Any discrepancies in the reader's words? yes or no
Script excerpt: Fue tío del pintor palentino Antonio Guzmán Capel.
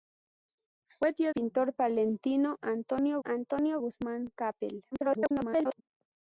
yes